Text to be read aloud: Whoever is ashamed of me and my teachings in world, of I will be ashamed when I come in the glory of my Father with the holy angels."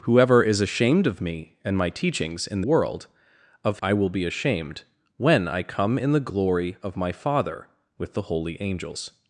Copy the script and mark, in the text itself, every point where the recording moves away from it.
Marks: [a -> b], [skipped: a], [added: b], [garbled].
Whoever is ashamed of me and my teachings in world, of I will be ashamed when I come in the glory of my Father with the holy angels."